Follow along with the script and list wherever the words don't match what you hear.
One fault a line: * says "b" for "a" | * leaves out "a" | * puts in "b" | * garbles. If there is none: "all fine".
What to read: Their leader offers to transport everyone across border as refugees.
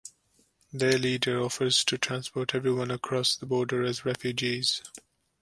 * puts in "the"